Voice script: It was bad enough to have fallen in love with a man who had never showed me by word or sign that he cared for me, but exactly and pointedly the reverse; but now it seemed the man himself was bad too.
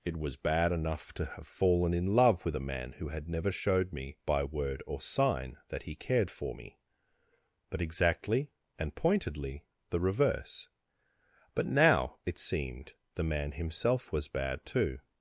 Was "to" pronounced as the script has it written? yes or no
yes